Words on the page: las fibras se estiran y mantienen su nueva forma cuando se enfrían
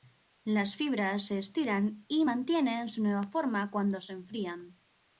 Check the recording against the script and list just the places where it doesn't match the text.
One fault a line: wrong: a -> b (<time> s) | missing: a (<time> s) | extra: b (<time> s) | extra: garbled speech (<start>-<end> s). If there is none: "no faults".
no faults